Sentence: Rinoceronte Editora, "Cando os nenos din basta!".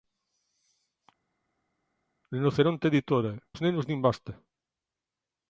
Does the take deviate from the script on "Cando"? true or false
true